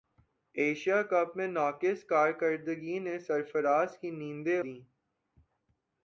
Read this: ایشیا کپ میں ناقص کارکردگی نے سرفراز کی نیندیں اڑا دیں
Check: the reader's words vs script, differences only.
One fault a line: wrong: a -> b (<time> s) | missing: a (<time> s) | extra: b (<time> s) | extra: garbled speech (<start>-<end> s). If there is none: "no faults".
missing: اڑا (4.6 s)